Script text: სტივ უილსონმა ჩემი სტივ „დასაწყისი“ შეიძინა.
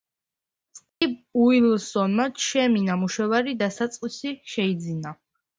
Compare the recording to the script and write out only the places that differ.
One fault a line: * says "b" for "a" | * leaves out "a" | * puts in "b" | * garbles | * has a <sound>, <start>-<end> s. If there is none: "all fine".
* has a dropout, 0.9-1.0 s
* says "ნამუშევარი" for "სტივ"